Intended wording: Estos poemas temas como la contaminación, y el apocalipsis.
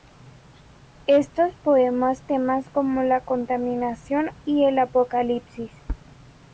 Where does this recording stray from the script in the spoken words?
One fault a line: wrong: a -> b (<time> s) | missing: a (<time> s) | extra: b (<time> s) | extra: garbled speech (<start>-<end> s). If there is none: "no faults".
no faults